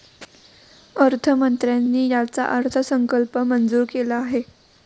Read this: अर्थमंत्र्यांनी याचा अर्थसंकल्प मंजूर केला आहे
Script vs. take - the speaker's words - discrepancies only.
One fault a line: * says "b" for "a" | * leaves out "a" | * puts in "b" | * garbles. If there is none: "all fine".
all fine